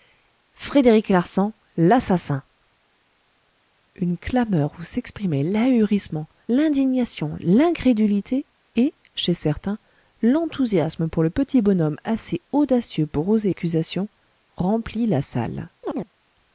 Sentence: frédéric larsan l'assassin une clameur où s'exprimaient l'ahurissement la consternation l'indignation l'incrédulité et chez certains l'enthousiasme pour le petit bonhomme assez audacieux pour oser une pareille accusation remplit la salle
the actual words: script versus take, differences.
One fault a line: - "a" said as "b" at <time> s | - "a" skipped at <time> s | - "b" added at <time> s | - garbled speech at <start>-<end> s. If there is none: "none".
- "la consternation" skipped at 6.3 s
- "une pareille" skipped at 13.5 s